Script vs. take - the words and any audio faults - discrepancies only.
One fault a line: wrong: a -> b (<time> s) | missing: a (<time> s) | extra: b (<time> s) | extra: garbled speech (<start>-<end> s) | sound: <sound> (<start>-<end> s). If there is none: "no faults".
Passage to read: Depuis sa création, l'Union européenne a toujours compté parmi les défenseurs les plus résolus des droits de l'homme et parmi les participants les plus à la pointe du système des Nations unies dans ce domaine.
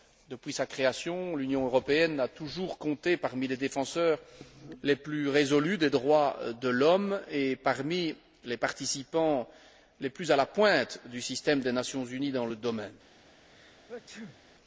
sound: sneeze (13.5-14.4 s)